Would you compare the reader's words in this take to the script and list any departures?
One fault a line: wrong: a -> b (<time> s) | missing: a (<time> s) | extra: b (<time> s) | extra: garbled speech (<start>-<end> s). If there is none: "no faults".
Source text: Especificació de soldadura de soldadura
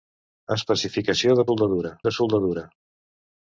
no faults